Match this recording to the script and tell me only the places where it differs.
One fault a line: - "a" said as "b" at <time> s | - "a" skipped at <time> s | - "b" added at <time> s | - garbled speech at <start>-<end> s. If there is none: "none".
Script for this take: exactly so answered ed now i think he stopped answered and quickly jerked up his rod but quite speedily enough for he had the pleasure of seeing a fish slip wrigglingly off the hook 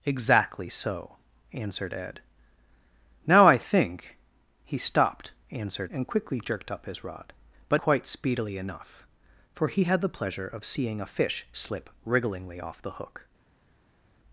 none